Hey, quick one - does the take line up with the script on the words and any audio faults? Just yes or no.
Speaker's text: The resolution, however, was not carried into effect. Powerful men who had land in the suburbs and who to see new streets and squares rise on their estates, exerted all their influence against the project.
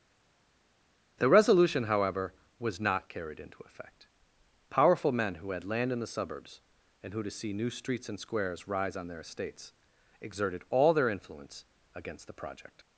yes